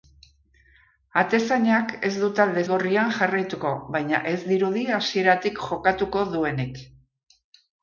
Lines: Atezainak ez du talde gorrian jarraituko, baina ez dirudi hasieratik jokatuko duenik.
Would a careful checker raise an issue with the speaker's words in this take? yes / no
no